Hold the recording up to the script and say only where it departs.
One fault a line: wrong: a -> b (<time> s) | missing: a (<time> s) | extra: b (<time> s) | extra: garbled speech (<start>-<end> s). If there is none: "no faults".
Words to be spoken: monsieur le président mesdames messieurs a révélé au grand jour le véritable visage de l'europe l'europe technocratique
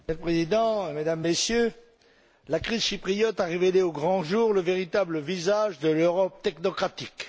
extra: la crise chypriote (2.5 s)
missing: l'europe (6.4 s)